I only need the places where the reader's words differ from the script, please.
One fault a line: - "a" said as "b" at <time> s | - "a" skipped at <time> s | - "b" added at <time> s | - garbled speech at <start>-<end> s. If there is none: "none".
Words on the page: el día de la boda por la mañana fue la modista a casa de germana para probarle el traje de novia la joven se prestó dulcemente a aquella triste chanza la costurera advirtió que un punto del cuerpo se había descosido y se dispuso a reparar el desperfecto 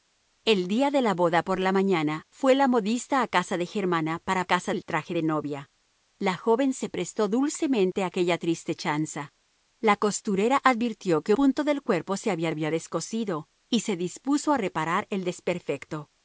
- "probarle" said as "casa" at 4.4 s
- "un" skipped at 11.3 s
- "había" added at 12.5 s